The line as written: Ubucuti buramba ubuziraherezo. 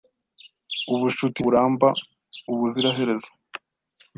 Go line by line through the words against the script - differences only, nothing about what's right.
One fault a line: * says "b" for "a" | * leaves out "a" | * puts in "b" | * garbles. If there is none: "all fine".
all fine